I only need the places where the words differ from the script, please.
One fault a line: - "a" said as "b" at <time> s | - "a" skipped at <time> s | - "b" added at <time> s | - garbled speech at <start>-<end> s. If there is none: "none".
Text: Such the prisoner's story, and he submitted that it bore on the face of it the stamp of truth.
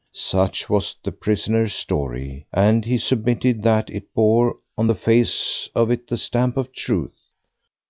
- "was" added at 0.7 s